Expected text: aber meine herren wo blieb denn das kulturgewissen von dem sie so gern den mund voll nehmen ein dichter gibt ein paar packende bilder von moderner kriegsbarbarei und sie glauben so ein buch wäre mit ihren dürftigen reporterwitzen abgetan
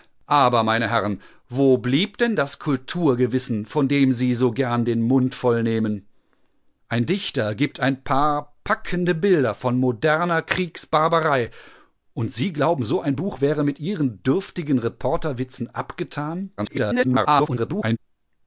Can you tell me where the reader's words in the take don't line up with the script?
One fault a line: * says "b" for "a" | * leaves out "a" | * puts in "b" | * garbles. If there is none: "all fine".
* garbles